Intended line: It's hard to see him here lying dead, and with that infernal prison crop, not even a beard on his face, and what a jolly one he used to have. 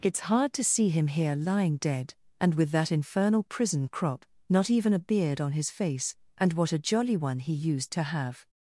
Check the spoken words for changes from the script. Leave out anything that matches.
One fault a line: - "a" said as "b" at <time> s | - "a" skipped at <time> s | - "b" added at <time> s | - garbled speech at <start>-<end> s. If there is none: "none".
none